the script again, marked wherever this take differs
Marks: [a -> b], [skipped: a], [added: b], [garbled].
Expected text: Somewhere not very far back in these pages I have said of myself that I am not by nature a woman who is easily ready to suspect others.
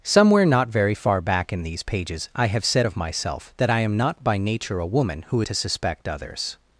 Somewhere not very far back in these pages I have said of myself that I am not by nature a woman who [skipped: is easily ready] to suspect others.